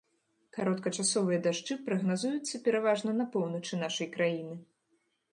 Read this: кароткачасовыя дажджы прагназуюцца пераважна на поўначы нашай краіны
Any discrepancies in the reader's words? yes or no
no